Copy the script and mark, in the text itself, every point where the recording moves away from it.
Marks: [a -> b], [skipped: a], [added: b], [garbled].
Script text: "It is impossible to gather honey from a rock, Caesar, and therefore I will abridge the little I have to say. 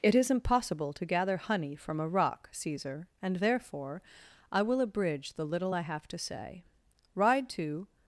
"It is impossible to gather honey from a rock, Caesar, and therefore I will abridge the little I have to say. [added: Ride to]